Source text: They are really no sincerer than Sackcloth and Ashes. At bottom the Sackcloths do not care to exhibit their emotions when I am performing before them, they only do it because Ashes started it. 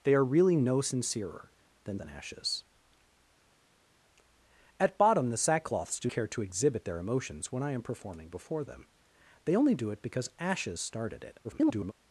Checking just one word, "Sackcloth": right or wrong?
wrong